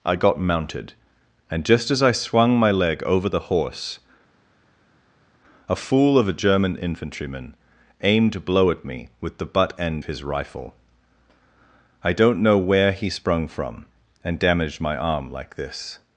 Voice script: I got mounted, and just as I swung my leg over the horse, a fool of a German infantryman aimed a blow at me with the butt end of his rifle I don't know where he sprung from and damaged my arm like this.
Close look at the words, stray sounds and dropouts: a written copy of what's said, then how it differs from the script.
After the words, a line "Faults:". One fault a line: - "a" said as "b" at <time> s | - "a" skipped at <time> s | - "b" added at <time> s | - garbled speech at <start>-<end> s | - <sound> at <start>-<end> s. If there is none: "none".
I got mounted, and just as I swung my leg over the horse, a fool of a German infantryman aimed a blow at me with the butt end his rifle I don't know where he sprung from and damaged my arm like this.
Faults:
- "of" skipped at 10.0 s